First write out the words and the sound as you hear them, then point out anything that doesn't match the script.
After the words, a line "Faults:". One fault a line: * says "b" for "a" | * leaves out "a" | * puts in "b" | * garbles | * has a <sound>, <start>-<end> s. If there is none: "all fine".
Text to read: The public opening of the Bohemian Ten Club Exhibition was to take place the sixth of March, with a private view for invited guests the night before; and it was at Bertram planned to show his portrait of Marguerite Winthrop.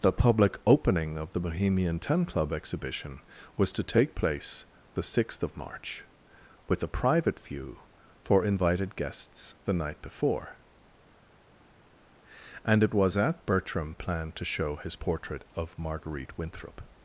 The public opening of the Bohemian Ten Club Exhibition was to take place the sixth of March, with a private view for invited guests the night before; and it was at Bertram planned to show his portrait of Marguerite Winthrop.
Faults:
all fine